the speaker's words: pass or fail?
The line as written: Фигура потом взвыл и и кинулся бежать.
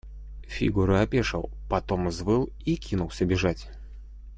fail